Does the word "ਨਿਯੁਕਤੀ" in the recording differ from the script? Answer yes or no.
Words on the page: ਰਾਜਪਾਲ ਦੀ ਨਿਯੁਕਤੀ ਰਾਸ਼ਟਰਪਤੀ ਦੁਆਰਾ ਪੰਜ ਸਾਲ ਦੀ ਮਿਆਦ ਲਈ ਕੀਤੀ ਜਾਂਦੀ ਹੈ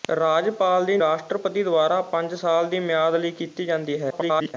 yes